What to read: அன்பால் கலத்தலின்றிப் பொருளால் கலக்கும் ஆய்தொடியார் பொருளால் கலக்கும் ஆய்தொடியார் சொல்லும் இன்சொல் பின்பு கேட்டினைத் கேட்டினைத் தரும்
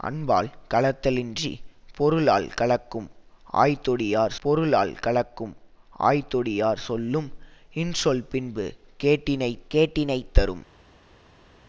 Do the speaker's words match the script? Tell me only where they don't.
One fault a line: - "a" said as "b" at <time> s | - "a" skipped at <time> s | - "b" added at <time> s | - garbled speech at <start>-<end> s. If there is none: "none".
none